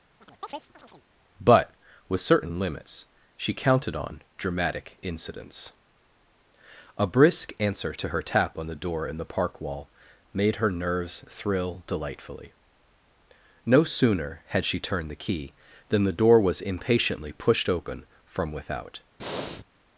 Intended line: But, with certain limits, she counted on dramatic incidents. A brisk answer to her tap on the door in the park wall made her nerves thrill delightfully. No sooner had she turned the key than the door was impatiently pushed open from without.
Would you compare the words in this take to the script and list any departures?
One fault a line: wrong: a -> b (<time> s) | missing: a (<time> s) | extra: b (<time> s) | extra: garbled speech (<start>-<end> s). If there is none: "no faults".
no faults